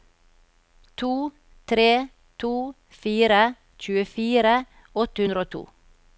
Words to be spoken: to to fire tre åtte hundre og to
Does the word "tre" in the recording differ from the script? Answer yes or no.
yes